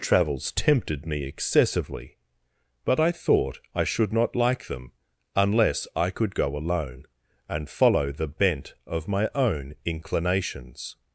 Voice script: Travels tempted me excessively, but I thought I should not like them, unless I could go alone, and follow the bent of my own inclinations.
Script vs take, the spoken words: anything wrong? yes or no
no